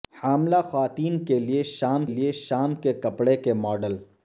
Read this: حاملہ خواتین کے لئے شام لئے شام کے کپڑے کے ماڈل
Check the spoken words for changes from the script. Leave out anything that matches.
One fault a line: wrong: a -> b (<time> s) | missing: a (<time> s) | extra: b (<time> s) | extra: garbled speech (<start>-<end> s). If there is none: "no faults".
no faults